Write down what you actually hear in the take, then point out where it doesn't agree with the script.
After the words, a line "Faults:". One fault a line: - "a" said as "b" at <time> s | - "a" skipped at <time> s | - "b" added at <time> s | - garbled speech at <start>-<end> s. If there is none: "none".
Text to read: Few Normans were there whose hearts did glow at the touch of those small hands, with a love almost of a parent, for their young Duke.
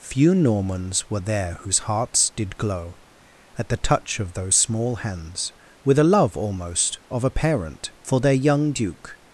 Few Normans were there whose hearts did glow at the touch of those small hands, with a love almost of a parent, for their young Duke.
Faults:
none